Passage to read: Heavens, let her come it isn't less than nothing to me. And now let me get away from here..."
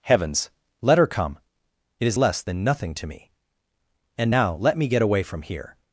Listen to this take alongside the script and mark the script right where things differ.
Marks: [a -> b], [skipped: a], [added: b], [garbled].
Heavens, let her come it [isn't -> is] less than nothing to me. And now let me get away from here..."